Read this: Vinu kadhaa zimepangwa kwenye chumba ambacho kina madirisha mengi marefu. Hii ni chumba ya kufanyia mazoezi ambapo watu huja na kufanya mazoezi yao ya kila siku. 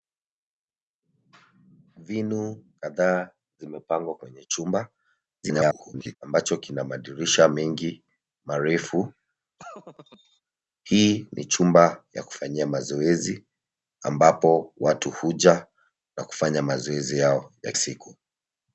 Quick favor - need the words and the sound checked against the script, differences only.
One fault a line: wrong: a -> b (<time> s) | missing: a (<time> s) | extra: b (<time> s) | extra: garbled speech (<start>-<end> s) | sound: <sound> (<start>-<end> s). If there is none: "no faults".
extra: garbled speech (5.4-6.2 s)
sound: laugh (9.6-10.4 s)
missing: kila (17.7 s)